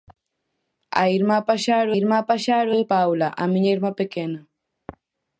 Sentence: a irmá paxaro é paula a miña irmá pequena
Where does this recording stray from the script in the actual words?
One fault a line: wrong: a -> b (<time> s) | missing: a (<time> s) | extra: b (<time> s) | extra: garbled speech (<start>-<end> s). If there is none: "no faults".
extra: irmá paxaro (2.0 s)